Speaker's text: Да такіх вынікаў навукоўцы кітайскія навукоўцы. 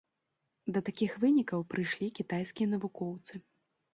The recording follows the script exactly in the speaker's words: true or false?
false